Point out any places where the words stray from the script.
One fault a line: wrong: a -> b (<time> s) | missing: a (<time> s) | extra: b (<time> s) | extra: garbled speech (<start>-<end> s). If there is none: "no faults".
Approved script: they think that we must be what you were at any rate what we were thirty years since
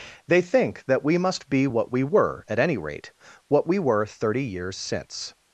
wrong: you -> we (1.9 s)